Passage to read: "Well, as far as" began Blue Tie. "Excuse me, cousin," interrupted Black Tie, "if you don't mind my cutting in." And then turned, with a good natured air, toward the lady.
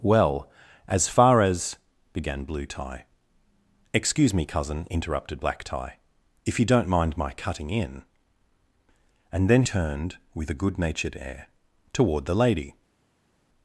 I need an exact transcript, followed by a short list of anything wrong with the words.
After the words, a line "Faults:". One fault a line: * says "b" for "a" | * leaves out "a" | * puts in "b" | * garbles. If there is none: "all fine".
"Well, as far as" began Blue Tie. "Excuse me, cousin," interrupted Black Tie, "if you don't mind my cutting in." And then turned, with a good natured air, toward the lady.
Faults:
all fine